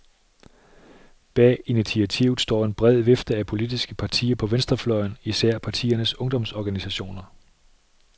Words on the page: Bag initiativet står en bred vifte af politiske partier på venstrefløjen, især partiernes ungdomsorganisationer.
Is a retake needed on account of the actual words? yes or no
no